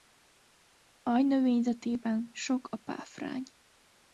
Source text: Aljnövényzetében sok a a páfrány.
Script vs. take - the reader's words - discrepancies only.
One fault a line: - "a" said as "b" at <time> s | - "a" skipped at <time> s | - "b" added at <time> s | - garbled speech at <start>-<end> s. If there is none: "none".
- "a" skipped at 2.8 s